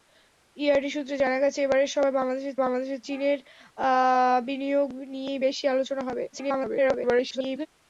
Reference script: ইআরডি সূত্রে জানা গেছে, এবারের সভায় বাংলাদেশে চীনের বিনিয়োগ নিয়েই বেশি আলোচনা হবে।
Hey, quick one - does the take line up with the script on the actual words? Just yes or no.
no